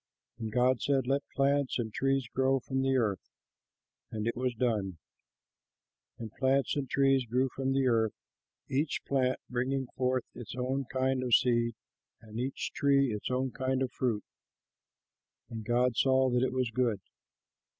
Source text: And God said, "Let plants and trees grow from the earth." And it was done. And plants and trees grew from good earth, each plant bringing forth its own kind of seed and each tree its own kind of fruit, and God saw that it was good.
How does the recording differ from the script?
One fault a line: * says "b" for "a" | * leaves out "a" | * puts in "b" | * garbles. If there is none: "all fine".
* says "the" for "good"